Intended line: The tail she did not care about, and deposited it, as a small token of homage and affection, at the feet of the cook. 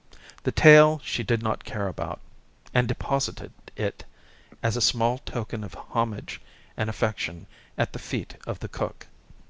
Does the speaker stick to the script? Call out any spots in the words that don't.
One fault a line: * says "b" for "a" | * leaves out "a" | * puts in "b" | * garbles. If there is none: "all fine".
all fine